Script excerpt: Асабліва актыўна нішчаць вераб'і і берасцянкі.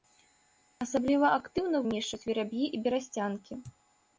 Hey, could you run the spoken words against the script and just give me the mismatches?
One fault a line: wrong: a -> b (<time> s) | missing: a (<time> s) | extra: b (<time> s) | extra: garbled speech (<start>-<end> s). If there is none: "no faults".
no faults